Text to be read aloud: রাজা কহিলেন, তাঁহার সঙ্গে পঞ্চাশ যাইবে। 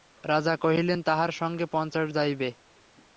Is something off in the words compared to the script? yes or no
no